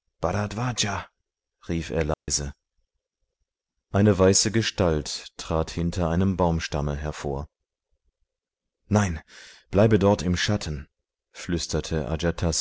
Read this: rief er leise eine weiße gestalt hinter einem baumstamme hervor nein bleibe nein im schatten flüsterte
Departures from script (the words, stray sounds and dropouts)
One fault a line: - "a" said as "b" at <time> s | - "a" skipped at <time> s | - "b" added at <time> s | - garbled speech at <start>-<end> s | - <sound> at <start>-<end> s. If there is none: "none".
- dropout at 2.1-2.3 s
- "trat" added at 5.4 s
- "nein" said as "dort" at 10.0 s